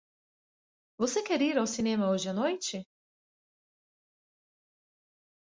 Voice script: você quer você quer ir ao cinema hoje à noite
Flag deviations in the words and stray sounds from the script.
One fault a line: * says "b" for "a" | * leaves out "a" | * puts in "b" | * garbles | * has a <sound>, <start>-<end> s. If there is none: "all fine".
* leaves out "você quer"